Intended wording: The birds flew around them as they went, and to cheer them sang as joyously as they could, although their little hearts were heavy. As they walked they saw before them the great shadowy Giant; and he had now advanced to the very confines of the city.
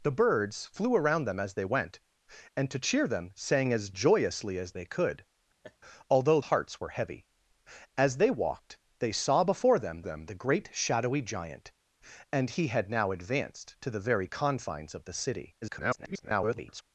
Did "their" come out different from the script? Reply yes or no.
yes